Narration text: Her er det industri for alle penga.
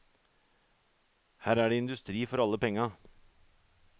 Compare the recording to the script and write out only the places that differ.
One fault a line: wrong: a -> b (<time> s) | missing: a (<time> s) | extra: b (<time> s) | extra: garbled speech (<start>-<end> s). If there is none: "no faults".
no faults